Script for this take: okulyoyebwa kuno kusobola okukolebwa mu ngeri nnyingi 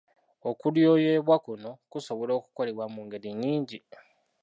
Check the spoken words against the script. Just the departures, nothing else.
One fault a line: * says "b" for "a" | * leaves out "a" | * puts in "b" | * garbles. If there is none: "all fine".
all fine